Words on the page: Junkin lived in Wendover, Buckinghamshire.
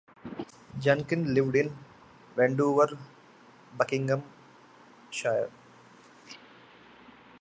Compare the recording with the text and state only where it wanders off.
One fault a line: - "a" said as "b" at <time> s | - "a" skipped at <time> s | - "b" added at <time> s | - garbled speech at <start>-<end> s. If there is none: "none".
none